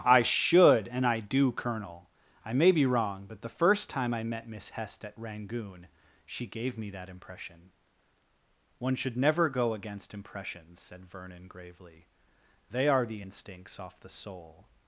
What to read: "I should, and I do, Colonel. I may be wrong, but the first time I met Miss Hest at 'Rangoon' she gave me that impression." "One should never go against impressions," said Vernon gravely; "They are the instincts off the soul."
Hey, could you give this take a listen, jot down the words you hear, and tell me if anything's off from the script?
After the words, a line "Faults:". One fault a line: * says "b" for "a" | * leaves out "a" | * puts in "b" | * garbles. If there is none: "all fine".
"I should, and I do, Colonel. I may be wrong, but the first time I met Miss Hest at 'Rangoon' she gave me that impression." "One should never go against impressions," said Vernon gravely; "They are the instincts off the soul."
Faults:
all fine